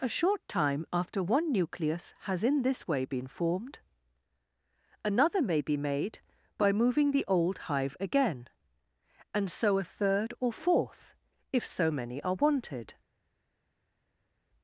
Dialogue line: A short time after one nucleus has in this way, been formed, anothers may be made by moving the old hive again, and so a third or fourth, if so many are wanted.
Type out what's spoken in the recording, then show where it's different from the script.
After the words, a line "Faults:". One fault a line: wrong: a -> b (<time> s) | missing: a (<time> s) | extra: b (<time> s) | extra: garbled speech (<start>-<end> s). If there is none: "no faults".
A short time after one nucleus has in this way, been formed, another may be made by moving the old hive again, and so a third or fourth, if so many are wanted.
Faults:
wrong: anothers -> another (5.0 s)